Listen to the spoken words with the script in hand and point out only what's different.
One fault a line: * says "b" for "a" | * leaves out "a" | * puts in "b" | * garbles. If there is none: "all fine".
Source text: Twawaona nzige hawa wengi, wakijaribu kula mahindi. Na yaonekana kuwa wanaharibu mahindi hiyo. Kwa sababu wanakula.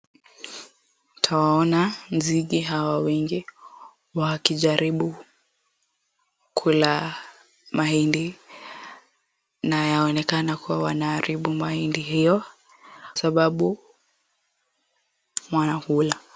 * leaves out "Kwa"